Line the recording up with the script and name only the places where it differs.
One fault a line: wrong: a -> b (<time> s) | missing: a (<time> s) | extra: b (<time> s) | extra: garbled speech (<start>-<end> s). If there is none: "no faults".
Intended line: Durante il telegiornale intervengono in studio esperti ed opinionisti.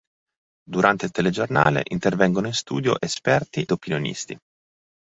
missing: ed (3.6 s)